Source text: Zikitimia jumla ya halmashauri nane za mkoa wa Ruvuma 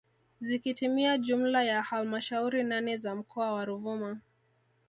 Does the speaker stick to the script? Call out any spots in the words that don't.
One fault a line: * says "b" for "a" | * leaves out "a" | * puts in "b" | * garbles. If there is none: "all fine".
all fine